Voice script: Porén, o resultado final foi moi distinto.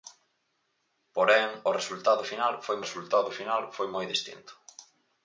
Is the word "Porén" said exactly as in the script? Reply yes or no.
yes